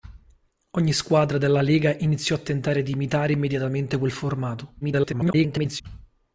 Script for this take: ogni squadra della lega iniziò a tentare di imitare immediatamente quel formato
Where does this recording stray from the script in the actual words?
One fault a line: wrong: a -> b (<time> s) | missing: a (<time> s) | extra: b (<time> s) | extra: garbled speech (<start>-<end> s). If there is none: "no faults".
extra: garbled speech (4.8-5.8 s)